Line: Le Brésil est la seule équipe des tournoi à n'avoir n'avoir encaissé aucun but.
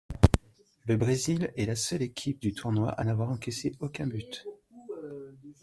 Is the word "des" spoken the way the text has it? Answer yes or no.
no